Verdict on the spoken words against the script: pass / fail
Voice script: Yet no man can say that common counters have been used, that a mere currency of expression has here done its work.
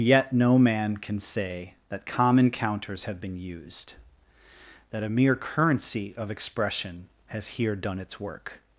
pass